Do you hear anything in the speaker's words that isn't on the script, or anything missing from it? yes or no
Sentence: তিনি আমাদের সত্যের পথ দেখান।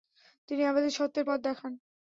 no